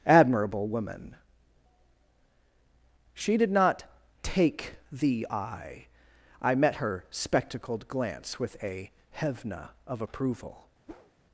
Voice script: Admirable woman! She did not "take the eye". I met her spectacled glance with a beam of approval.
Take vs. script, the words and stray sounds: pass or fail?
fail